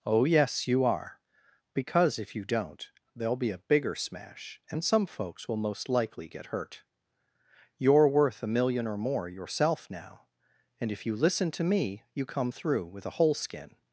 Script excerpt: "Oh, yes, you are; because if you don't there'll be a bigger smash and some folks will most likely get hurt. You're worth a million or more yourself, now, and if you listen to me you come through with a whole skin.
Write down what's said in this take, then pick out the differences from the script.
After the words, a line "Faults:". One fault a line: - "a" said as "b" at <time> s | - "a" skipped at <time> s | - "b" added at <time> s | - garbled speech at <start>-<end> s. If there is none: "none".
"Oh, yes, you are; because if you don't there'll be a bigger smash and some folks will most likely get hurt. You're worth a million or more yourself, now, and if you listen to me you come through with a whole skin.
Faults:
none